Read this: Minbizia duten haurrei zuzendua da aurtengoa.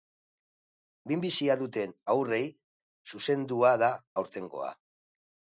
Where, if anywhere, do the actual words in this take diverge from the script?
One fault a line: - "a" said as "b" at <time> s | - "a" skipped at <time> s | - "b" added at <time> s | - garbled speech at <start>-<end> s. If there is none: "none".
none